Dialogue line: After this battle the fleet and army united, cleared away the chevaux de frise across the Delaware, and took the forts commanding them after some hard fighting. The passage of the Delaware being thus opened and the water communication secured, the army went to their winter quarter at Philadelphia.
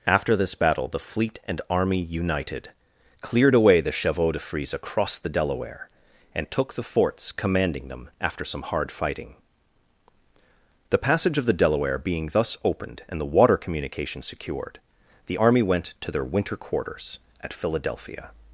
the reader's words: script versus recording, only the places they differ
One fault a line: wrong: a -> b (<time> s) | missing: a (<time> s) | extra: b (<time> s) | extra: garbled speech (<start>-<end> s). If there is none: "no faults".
wrong: quarter -> quarters (16.6 s)